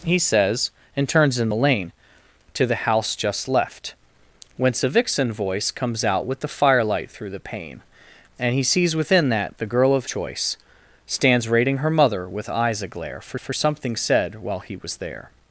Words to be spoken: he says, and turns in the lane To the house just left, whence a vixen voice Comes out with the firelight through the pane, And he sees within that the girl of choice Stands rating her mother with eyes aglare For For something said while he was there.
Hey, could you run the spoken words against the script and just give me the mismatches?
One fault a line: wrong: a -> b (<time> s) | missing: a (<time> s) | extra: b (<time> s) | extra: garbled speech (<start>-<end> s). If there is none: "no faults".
no faults